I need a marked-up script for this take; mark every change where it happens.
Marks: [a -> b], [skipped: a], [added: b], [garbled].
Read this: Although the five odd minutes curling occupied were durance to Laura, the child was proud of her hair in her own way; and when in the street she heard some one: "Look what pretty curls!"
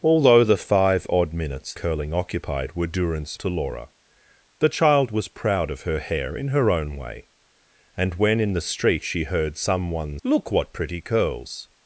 Although the five odd minutes curling occupied were durance to Laura, the child was proud of her hair in her own way; and when in the street she heard some one: "Look what pretty curls!"